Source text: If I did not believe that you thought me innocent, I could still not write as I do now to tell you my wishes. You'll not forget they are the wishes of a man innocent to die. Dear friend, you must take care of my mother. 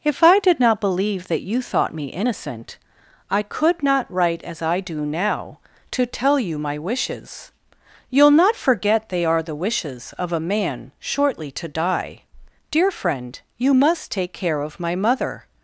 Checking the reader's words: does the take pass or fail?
fail